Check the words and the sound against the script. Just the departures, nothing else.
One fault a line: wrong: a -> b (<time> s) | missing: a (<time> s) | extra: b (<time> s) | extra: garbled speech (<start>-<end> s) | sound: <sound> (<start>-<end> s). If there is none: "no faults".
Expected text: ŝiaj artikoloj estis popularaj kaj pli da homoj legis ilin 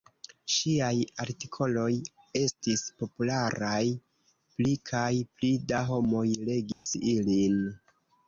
extra: pli (4.5 s)
sound: dropout (6.7-6.9 s)